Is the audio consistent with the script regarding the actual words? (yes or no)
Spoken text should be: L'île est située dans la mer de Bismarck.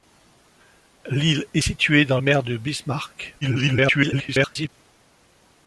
no